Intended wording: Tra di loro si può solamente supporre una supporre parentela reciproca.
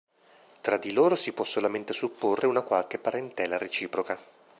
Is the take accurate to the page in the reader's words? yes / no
no